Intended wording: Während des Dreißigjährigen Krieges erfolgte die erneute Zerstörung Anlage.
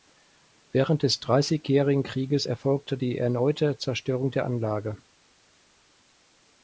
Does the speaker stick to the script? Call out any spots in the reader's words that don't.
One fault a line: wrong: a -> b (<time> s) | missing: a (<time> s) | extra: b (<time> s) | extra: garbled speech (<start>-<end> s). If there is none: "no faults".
extra: der (4.3 s)